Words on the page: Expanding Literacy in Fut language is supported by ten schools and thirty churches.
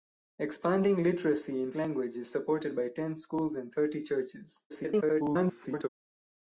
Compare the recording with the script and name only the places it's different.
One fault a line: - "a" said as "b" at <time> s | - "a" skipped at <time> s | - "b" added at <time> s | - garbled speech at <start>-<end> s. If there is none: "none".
- "Fut" skipped at 1.7 s
- garbled speech at 4.7-5.9 s